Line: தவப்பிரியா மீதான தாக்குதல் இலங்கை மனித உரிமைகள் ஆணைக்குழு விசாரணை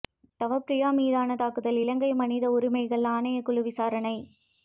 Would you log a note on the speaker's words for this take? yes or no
no